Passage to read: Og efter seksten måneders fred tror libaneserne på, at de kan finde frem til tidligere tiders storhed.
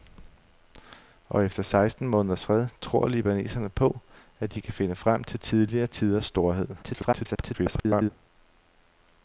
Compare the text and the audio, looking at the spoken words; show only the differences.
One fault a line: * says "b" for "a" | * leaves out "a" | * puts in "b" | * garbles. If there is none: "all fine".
* garbles